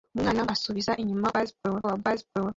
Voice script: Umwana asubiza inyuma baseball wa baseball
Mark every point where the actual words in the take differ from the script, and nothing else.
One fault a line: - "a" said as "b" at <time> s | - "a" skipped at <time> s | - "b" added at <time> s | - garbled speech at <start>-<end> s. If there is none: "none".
none